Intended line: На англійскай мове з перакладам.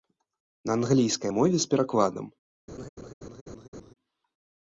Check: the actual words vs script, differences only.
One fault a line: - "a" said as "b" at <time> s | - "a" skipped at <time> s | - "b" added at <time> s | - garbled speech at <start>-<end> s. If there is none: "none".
none